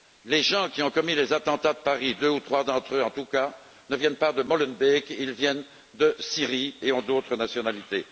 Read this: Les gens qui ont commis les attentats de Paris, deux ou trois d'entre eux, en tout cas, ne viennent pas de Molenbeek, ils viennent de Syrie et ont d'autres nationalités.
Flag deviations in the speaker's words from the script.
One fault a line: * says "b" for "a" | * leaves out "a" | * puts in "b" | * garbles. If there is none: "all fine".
all fine